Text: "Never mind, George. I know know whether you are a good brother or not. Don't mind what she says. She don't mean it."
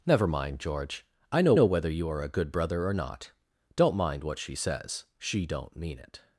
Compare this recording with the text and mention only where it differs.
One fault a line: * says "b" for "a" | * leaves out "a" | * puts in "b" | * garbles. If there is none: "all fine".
all fine